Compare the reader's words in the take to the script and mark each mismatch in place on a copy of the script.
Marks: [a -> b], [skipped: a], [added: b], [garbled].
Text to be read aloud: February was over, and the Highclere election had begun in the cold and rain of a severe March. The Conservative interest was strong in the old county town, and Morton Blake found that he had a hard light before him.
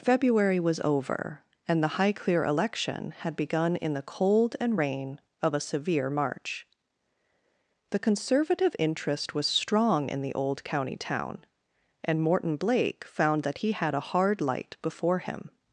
February was over, and the Highclere election had begun in the cold and rain of a severe March. The Conservative interest was strong in the old county town, and Morton Blake found that he had a hard light before him.